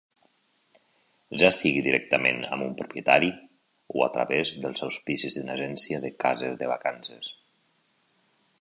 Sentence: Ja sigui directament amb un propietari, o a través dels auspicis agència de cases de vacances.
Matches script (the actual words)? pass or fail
fail